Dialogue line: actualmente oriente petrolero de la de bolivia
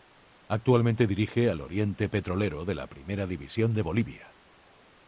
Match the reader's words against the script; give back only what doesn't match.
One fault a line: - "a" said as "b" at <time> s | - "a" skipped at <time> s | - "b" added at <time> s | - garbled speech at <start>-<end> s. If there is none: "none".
- "dirige al" added at 1.1 s
- "primera división" added at 2.9 s